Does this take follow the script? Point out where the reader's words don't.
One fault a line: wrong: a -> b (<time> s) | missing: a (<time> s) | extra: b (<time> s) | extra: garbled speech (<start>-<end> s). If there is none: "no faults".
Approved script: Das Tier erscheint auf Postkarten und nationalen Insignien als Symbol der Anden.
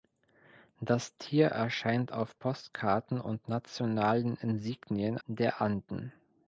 missing: als Symbol (5.2 s)